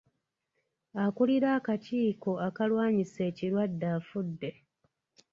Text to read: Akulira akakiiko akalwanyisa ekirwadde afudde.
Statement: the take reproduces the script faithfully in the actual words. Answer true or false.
true